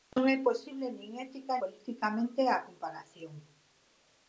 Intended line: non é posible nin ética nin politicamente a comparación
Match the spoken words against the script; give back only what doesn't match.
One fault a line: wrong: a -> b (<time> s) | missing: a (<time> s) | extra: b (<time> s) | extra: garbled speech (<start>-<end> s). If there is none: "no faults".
missing: nin (1.5 s)